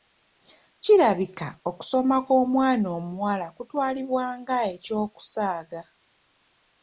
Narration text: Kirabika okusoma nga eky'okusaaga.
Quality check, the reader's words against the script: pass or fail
fail